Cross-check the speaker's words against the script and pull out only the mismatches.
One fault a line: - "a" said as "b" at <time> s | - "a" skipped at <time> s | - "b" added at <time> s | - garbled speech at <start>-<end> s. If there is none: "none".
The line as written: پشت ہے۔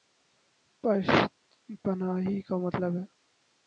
- "پناہی کامطلب" added at 1.8 s